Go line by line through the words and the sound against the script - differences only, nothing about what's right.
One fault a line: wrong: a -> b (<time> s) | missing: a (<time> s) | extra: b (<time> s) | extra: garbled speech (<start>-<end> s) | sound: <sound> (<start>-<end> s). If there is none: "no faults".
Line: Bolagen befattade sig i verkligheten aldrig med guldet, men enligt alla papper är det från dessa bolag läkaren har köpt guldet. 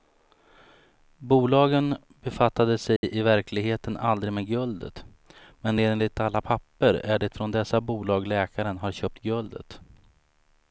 sound: dropout (3.0-3.0 s)